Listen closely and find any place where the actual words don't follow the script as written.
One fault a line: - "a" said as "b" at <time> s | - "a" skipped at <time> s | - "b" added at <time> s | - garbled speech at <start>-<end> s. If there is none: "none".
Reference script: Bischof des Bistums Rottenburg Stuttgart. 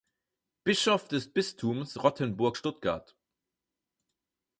none